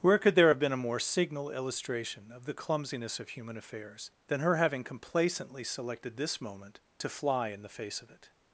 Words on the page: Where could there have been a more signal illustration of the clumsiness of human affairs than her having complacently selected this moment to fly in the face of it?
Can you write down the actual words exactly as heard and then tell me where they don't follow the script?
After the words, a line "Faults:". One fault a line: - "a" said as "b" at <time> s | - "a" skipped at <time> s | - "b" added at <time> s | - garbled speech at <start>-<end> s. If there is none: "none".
Where could there have been a more signal illustration of the clumsiness of human affairs than her having complacently selected this moment to fly in the face of it?
Faults:
none